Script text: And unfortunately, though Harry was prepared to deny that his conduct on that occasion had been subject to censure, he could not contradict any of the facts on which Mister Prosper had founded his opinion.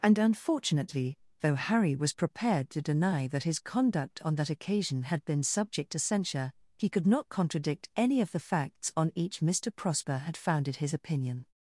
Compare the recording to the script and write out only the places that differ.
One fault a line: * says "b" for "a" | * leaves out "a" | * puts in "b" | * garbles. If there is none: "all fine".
* says "each" for "which"